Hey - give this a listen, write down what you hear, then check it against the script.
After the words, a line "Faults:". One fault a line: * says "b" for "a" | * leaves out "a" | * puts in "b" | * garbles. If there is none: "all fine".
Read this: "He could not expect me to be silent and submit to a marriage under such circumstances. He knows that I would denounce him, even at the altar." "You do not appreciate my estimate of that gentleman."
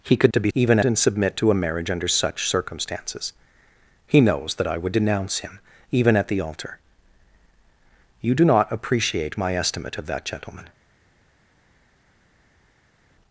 "He could to be even and submit to a marriage under such circumstances. He knows that I would denounce him, even at the altar." "You do not appreciate my estimate of that gentleman."
Faults:
* leaves out "not expect me"
* says "even" for "silent"